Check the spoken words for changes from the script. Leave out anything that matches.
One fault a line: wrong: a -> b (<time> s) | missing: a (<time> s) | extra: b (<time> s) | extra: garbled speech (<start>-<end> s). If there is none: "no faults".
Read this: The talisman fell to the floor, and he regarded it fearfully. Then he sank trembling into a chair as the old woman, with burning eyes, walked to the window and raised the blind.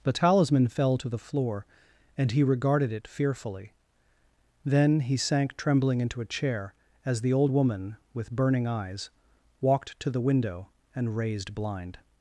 missing: the (11.5 s)